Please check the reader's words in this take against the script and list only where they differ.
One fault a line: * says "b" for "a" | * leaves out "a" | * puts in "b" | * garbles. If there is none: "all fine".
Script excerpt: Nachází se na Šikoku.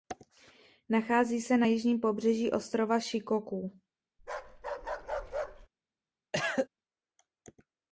* puts in "jižním pobřeží ostrova"